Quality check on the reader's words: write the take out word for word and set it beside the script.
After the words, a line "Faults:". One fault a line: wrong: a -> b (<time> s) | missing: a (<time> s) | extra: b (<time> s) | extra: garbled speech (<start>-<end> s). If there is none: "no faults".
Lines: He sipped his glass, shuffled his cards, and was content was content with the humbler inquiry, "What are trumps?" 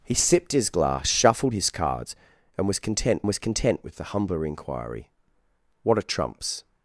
He sipped his glass, shuffled his cards, and was content was content with the humbler inquiry, "What are trumps?"
Faults:
no faults